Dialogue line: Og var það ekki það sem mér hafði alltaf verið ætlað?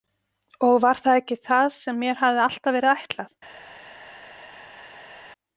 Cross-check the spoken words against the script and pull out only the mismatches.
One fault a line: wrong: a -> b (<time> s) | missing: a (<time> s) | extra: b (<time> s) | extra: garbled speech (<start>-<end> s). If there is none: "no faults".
no faults